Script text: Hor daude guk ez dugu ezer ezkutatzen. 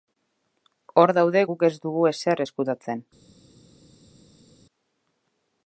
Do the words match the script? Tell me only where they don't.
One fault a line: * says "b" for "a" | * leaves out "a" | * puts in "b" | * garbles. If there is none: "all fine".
all fine